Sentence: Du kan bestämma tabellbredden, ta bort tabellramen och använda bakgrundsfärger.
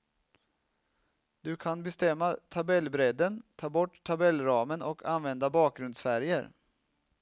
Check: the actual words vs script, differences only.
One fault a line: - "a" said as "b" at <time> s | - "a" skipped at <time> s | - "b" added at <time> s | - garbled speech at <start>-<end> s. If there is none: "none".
none